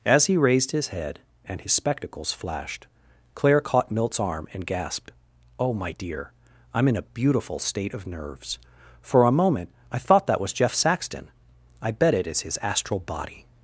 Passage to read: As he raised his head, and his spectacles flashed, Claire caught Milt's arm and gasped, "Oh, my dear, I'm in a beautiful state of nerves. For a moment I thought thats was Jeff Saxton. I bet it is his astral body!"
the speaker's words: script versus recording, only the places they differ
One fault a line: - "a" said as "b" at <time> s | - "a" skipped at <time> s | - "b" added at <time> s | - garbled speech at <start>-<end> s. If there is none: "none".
- "thats" said as "that" at 10.3 s